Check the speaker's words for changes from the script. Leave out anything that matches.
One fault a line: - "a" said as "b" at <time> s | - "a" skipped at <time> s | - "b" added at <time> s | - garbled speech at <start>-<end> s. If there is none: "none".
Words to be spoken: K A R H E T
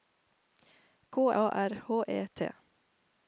none